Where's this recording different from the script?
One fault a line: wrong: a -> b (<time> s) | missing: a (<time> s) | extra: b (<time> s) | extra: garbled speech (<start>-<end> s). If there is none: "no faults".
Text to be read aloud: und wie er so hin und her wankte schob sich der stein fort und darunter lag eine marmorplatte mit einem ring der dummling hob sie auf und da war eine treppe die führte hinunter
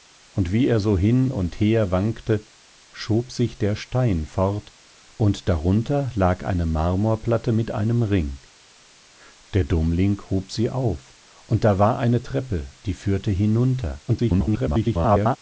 extra: garbled speech (14.1-15.4 s)